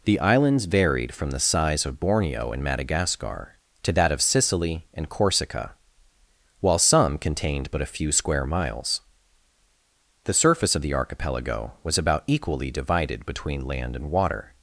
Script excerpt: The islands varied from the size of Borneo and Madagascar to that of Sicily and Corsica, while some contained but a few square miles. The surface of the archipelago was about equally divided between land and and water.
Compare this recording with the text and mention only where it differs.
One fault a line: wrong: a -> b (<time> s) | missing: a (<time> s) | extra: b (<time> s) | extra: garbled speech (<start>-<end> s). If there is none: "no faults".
missing: and (14.1 s)